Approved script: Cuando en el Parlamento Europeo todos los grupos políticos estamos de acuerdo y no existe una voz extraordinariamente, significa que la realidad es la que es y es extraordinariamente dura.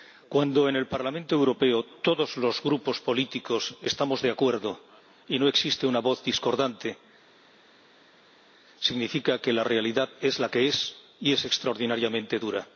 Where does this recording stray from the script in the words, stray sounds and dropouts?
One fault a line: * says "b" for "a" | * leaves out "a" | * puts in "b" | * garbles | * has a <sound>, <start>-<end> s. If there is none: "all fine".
* says "discordante" for "extraordinariamente"